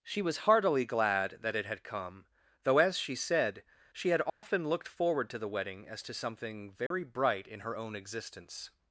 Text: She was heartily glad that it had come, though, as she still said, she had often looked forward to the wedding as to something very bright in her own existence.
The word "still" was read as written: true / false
false